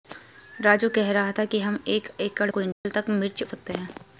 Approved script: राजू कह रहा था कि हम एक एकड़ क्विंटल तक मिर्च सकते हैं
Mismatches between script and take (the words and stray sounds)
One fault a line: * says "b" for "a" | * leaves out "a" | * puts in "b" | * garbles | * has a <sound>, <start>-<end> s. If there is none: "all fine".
* has a dropout, 2.7-2.9 s